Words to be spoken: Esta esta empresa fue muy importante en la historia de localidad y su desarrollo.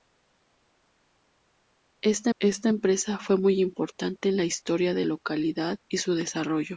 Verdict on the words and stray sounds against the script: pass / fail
pass